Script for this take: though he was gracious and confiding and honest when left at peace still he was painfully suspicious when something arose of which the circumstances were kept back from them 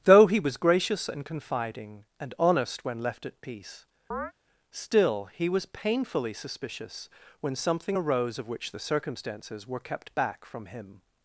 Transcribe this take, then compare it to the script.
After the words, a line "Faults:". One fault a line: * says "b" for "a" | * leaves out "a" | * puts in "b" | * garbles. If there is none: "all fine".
though he was gracious and confiding and honest when left at peace still he was painfully suspicious when something arose of which the circumstances were kept back from him
Faults:
* says "him" for "them"